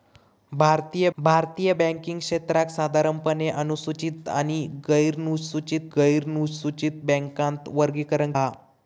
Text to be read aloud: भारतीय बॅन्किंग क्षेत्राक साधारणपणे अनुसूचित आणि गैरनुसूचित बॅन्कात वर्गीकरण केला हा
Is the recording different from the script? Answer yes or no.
yes